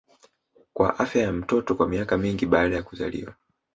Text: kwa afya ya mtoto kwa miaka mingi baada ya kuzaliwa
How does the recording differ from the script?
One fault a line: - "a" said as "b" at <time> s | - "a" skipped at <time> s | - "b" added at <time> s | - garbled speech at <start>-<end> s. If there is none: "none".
none